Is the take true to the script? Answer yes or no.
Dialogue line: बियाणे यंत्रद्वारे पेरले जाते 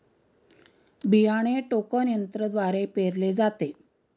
no